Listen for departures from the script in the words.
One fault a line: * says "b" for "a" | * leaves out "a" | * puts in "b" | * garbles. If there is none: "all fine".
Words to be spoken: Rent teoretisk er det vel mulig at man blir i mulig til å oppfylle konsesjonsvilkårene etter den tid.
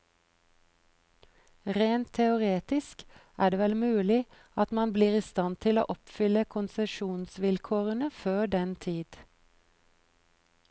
* says "stand" for "mulig"
* says "før" for "etter"